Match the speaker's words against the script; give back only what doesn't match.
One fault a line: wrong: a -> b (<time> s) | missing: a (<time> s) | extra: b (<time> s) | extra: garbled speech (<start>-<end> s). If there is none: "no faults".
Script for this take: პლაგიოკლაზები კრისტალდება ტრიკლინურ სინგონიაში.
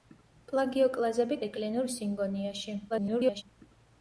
missing: კრისტალდება (1.4 s)
extra: garbled speech (2.9-3.4 s)